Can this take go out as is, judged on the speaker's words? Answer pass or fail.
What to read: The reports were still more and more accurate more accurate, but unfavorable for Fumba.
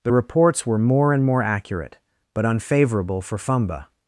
fail